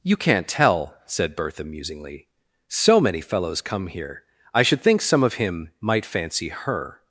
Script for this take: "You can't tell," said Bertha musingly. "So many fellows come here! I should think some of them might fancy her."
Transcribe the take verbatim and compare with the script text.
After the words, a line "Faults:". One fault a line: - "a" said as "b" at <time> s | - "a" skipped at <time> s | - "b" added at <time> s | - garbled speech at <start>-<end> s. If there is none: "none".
"You can't tell," said Bertha musingly. "So many fellows come here! I should think some of him might fancy her."
Faults:
- "them" said as "him" at 5.3 s